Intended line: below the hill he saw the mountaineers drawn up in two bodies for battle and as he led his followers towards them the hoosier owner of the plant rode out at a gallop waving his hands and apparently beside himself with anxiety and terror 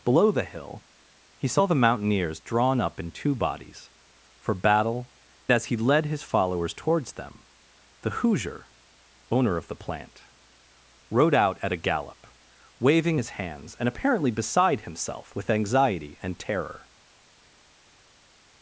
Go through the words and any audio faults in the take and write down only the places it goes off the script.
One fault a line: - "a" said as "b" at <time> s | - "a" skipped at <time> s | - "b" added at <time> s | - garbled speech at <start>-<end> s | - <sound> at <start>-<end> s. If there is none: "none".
- "and" skipped at 5.1 s